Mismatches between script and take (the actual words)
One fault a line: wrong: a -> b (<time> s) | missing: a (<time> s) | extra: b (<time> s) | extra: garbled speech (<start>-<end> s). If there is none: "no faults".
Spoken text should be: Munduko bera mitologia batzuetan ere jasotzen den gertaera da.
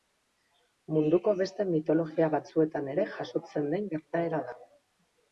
wrong: bera -> beste (1.4 s)